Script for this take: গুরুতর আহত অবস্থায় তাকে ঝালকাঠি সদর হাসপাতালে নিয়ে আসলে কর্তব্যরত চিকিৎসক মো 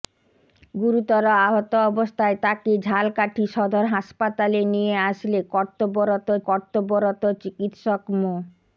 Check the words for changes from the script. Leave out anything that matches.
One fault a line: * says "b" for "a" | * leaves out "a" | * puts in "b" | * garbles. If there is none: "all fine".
* puts in "কর্তব্যরত"